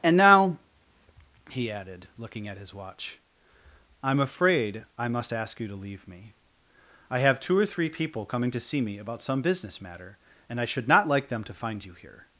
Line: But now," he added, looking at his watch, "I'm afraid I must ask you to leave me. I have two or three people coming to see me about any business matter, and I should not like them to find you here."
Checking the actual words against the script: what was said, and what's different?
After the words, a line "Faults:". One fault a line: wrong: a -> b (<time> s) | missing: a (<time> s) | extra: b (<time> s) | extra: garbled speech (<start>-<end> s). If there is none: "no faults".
And now," he added, looking at his watch, "I'm afraid I must ask you to leave me. I have two or three people coming to see me about some business matter, and I should not like them to find you here."
Faults:
wrong: But -> And (0.0 s)
wrong: any -> some (9.2 s)